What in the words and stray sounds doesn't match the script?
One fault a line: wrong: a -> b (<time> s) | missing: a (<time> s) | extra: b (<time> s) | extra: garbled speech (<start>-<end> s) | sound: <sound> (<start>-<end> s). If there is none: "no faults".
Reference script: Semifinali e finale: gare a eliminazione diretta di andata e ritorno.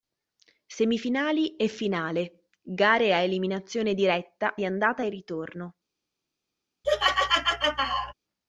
sound: laugh (6.8-8.1 s)